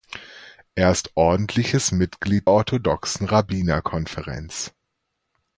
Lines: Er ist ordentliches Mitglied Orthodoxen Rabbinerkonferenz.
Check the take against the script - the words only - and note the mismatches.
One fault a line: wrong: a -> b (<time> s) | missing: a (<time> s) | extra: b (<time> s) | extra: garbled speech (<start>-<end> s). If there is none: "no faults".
no faults